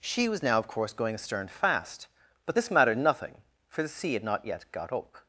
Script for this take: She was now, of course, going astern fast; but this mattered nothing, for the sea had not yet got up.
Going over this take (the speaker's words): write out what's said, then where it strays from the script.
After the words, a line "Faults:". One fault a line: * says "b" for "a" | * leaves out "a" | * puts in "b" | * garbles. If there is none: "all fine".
She was now, of course, going astern fast; but this mattered nothing, for the sea had not yet got up.
Faults:
all fine